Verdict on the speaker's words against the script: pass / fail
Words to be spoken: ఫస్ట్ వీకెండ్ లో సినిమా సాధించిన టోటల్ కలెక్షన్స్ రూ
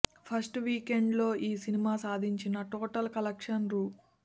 fail